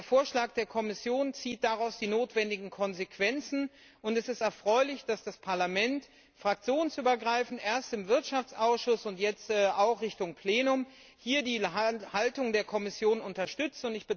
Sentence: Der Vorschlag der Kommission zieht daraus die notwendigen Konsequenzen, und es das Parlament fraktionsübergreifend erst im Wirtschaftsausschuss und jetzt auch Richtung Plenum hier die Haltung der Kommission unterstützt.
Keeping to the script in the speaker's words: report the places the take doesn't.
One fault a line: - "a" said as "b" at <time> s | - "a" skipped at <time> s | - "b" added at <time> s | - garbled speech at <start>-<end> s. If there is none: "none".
- "ist erfreulich dass" added at 4.3 s